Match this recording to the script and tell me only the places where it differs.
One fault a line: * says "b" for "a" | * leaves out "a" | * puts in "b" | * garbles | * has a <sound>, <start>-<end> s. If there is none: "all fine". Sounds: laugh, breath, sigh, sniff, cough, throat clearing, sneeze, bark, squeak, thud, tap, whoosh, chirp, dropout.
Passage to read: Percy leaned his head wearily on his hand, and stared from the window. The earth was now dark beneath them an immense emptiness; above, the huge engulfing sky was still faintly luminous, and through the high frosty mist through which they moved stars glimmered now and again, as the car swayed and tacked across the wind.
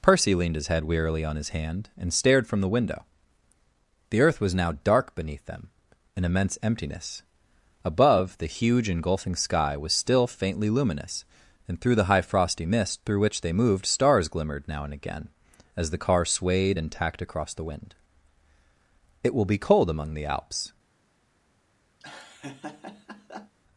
* puts in "It will be cold among the Alps"
* has a laugh, 22.0-23.6 s